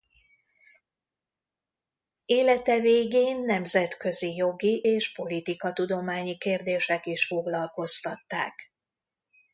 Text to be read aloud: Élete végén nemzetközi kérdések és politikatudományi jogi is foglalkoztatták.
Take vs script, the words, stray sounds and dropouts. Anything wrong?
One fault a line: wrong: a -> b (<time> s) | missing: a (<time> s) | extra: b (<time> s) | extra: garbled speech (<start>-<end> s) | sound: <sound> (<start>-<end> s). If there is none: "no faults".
wrong: kérdések -> jogi (4.3 s)
wrong: jogi -> kérdések (6.4 s)